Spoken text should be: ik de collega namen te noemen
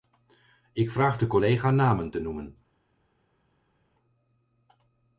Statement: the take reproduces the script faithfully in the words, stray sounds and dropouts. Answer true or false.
false